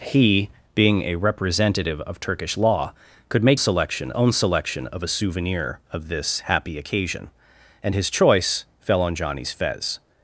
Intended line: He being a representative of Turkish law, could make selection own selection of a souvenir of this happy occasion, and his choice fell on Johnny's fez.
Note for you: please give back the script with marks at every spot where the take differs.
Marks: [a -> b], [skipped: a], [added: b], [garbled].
He being a representative of Turkish law, could make selection own selection of a souvenir of this happy occasion, and his choice fell on Johnny's fez.